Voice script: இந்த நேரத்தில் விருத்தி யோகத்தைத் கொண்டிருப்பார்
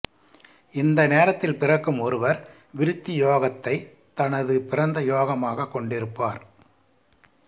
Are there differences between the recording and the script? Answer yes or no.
yes